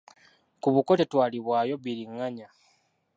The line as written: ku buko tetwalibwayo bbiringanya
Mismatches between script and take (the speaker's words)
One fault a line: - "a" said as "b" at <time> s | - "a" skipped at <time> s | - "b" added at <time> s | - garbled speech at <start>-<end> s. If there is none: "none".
none